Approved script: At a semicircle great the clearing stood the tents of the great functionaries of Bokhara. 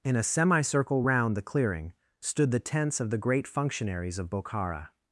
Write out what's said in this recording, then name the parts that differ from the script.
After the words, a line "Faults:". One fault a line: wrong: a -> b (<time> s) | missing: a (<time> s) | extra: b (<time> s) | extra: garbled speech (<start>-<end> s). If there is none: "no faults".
In a semicircle round the clearing stood the tents of the great functionaries of Bokhara.
Faults:
wrong: At -> In (0.0 s)
wrong: great -> round (1.0 s)